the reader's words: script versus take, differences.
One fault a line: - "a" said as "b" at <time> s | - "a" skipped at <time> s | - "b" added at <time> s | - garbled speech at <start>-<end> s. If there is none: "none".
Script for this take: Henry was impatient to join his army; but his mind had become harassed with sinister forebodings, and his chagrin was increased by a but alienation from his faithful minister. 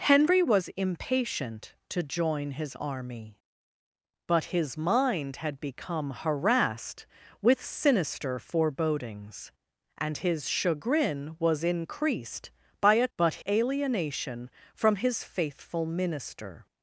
none